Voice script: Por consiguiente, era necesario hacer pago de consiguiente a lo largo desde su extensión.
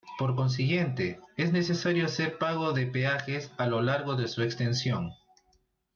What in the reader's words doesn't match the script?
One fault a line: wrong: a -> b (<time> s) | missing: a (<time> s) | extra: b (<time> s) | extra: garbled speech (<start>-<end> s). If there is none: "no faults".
wrong: era -> es (1.4 s)
wrong: consiguiente -> peajes (2.9 s)
wrong: desde -> de (4.1 s)